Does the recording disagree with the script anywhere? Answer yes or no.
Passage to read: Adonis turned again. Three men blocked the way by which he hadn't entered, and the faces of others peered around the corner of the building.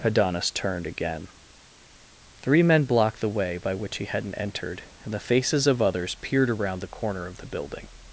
no